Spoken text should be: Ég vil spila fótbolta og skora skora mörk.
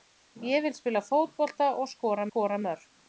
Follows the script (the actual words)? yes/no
yes